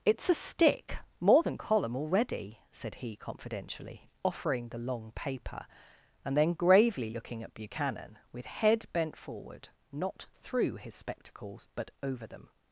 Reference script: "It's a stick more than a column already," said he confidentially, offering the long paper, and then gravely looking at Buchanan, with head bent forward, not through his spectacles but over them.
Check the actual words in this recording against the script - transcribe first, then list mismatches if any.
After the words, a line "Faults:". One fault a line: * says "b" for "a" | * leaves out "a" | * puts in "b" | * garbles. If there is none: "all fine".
"It's a stick more than column already," said he confidentially, offering the long paper, and then gravely looking at Buchanan, with head bent forward, not through his spectacles but over them.
Faults:
* leaves out "a"